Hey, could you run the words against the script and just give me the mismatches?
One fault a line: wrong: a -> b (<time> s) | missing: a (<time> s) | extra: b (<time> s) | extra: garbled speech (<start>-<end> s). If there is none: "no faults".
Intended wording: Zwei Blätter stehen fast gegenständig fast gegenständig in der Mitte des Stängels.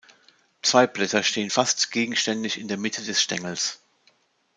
missing: fast gegenständig (2.6 s)